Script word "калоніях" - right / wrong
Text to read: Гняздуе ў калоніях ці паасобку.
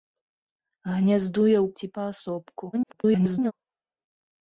wrong